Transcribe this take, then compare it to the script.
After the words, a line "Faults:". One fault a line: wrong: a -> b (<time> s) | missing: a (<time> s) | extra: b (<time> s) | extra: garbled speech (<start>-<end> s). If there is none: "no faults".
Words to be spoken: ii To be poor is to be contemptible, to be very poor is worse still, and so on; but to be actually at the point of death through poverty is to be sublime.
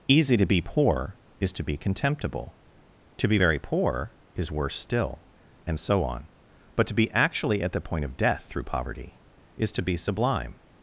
easy To be poor is to be contemptible, to be very poor is worse still, and so on; but to be actually at the point of death through poverty is to be sublime.
Faults:
wrong: ii -> easy (0.1 s)